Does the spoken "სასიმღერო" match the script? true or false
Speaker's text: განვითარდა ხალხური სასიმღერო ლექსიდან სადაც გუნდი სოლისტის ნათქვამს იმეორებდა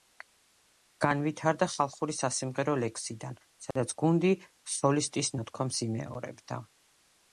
true